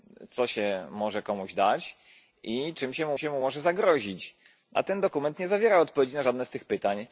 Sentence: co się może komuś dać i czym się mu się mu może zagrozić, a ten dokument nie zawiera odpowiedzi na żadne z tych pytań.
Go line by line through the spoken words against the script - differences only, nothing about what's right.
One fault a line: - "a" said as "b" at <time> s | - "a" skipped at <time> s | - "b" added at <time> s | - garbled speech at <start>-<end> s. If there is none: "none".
none